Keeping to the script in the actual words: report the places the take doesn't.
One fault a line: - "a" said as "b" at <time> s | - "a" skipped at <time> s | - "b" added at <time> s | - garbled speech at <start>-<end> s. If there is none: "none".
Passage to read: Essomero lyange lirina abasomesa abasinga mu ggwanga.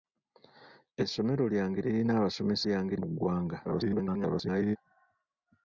- "abasinga" said as "lyange" at 2.7 s
- garbled speech at 3.6-4.8 s